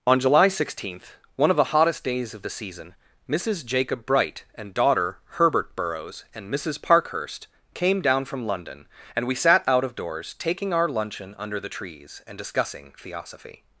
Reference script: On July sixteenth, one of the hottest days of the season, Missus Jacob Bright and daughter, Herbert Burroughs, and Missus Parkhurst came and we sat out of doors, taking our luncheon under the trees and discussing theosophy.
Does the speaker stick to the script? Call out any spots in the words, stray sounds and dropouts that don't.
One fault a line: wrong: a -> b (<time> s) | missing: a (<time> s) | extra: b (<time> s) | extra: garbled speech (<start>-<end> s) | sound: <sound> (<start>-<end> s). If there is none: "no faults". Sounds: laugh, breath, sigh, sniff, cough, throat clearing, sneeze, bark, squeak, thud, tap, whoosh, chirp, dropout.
extra: down from London (8.0 s)